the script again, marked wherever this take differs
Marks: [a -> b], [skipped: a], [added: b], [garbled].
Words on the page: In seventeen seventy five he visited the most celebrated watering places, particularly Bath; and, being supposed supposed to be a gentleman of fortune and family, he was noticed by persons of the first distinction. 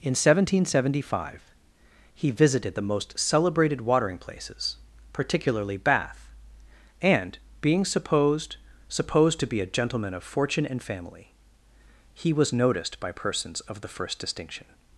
In seventeen seventy five he visited the most celebrated watering places, particularly Bath; and, being supposed supposed to be a gentleman of fortune and family, he was noticed by persons of the first distinction.